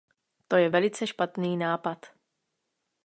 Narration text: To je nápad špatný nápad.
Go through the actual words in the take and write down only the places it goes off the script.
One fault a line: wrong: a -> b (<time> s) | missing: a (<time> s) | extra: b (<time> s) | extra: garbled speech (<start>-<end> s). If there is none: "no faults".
wrong: nápad -> velice (0.7 s)